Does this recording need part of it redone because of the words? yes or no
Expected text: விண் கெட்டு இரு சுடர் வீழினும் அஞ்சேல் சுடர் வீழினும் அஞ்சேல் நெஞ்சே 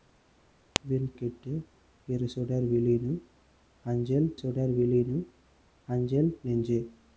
no